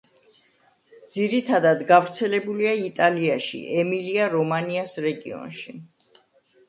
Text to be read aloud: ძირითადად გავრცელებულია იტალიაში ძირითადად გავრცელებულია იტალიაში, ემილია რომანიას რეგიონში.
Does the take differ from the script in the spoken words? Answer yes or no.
yes